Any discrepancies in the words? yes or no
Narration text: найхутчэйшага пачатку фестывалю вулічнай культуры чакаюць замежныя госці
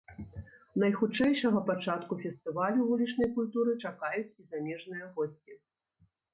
yes